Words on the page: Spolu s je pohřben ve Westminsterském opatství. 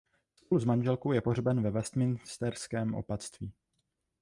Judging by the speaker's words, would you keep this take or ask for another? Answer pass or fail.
fail